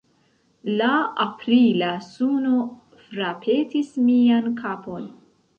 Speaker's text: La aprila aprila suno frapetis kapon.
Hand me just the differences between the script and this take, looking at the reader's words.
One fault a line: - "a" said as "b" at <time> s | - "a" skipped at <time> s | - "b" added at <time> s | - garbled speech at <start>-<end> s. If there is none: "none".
- "aprila" skipped at 1.9 s
- "mian" added at 4.1 s